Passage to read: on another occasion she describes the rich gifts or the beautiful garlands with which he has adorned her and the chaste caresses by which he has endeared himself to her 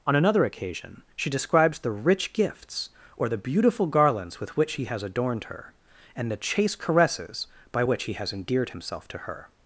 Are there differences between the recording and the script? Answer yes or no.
no